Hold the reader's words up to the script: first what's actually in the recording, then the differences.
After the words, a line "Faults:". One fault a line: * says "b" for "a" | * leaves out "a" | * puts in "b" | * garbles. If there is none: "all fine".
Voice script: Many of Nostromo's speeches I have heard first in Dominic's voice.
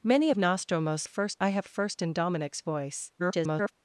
Many of Nostromo's first I have first in Dominic's voice. [garbled]
Faults:
* says "first" for "speeches"
* leaves out "heard"
* garbles